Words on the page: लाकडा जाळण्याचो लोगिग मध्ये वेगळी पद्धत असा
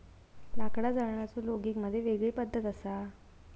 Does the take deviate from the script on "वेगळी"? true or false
false